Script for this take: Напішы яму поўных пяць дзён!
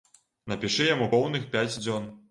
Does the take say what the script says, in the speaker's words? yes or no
yes